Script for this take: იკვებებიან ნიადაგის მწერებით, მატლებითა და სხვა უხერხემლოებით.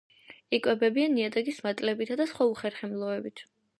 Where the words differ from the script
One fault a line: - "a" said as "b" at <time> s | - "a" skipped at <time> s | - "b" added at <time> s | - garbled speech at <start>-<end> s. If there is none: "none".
- "მწერებით" skipped at 1.6 s